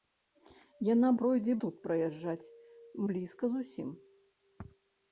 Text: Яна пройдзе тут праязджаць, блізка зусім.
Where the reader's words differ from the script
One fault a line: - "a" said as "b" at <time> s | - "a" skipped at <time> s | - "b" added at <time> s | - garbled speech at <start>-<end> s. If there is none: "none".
none